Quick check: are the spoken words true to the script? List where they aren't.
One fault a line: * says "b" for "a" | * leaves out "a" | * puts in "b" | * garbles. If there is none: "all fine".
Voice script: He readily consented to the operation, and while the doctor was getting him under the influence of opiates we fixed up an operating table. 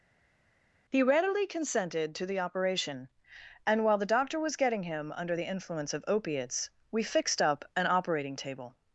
all fine